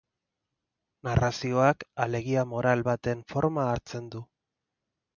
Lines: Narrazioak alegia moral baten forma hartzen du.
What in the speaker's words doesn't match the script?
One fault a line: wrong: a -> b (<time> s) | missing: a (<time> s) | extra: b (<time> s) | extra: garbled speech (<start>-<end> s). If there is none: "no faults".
no faults